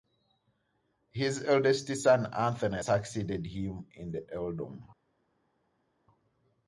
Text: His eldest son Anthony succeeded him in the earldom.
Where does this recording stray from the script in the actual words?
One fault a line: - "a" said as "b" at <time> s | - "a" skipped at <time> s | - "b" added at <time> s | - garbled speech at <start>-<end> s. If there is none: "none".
none